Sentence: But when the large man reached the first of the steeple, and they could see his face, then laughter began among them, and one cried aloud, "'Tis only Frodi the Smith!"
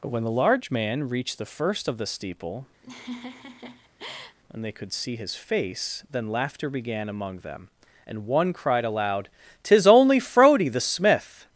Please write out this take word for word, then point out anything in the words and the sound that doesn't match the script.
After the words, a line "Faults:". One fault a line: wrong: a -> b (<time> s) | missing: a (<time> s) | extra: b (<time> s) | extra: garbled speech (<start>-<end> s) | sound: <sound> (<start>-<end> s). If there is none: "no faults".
But when the large man reached the first of the steeple, and they could see his face, then laughter began among them, and one cried aloud, "'Tis only Frodi the Smith!"
Faults:
sound: laugh (2.8-4.4 s)